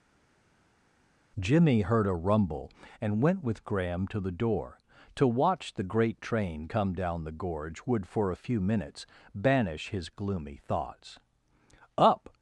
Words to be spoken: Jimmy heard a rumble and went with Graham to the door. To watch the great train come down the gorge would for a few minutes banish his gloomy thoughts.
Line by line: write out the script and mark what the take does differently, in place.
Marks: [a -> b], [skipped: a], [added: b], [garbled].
Jimmy heard a rumble and went with Graham to the door. To watch the great train come down the gorge would for a few minutes banish his gloomy thoughts. [added: Up]